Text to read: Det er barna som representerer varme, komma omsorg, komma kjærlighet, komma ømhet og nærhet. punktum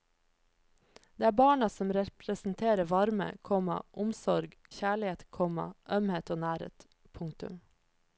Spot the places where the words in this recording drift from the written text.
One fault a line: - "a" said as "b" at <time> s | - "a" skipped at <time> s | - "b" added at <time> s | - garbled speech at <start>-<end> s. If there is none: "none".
- "komma" skipped at 4.6 s